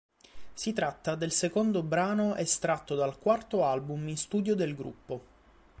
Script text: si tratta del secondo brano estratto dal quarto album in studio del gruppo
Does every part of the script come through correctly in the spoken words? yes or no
yes